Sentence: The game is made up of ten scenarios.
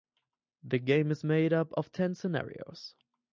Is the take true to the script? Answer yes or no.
yes